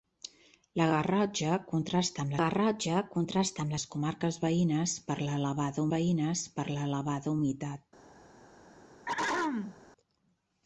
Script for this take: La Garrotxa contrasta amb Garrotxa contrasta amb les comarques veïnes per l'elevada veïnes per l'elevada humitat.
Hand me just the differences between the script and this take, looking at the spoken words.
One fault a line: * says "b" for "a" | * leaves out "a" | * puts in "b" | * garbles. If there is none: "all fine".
all fine